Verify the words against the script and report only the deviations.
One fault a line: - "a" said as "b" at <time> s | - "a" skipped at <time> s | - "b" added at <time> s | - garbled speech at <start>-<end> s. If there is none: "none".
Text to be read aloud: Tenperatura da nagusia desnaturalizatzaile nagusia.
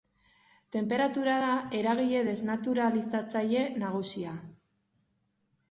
- "nagusia" said as "eragile" at 1.8 s